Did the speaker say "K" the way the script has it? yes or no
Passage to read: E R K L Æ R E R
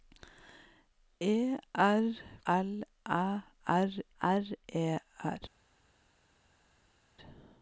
no